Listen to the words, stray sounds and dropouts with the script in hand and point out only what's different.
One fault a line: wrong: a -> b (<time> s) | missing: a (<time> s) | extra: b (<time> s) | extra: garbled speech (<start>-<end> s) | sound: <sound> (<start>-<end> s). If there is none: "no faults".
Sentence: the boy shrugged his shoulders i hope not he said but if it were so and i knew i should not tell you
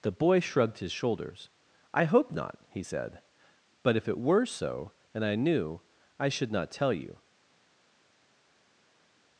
no faults